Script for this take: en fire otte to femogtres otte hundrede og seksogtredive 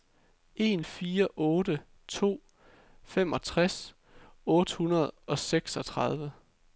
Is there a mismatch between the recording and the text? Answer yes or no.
no